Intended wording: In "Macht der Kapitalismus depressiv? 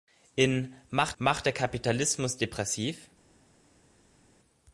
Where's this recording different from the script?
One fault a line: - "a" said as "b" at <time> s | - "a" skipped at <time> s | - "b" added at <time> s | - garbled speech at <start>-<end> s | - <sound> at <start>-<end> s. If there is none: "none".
- "macht" added at 1.2 s